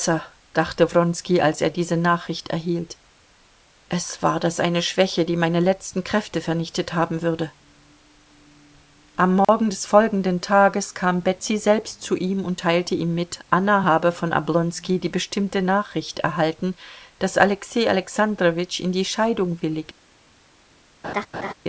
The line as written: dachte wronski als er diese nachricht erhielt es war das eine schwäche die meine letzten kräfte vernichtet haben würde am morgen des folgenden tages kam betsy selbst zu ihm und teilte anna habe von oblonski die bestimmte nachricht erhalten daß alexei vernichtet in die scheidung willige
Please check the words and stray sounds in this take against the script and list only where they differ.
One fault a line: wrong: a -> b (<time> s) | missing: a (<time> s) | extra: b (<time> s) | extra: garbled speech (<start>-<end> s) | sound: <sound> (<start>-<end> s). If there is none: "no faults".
sound: dropout (9.4-9.5 s)
extra: ihm mit (12.9 s)
wrong: vernichtet -> alexandrowitsch (17.9 s)
sound: laugh (21.0-21.5 s)